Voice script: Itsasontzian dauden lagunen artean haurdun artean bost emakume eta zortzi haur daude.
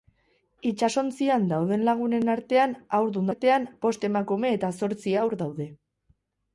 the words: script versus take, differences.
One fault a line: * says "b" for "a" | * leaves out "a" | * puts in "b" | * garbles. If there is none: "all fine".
all fine